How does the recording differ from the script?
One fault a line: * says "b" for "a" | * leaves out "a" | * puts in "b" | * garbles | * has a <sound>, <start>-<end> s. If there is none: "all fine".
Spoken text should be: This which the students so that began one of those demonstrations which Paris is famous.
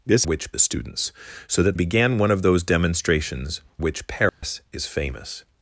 * has a dropout, 4.3-4.4 s